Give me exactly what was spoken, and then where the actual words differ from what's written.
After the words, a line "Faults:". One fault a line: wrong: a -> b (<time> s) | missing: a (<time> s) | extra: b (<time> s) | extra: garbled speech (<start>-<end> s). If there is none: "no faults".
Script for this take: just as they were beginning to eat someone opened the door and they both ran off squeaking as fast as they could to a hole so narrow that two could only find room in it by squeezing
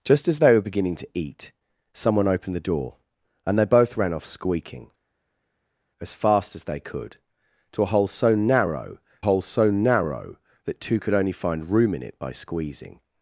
just as they were beginning to eat someone opened the door and they both ran off squeaking as fast as they could to a hole so narrow hole so narrow that two could only find room in it by squeezing
Faults:
extra: hole so narrow (9.2 s)